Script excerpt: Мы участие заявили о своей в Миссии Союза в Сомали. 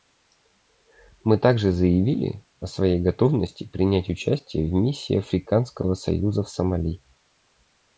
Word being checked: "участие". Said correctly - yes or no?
no